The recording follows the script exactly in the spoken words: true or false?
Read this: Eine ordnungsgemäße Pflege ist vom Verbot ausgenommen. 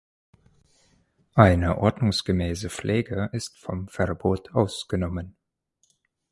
true